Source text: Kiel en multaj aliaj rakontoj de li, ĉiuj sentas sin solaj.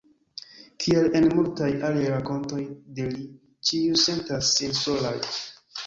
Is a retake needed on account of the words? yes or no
no